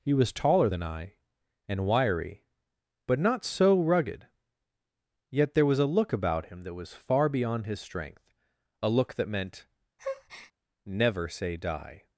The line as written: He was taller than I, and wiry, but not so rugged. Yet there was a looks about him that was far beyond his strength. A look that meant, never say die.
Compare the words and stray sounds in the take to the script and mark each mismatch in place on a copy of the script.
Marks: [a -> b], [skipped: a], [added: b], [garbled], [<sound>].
He was taller than I, and wiry, but not so rugged. Yet there was a [looks -> look] about him that was far beyond his strength. A look that meant, [breath] never say die.